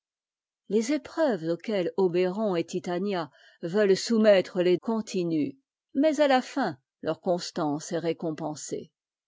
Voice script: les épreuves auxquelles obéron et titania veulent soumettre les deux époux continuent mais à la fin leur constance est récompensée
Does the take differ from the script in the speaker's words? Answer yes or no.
yes